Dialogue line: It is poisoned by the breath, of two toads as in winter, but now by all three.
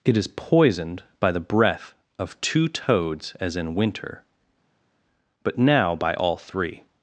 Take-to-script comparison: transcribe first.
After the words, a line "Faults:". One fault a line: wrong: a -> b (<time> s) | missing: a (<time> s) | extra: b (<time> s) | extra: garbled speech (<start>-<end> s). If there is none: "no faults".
It is poisoned by the breath, of two toads as in winter, but now by all three.
Faults:
no faults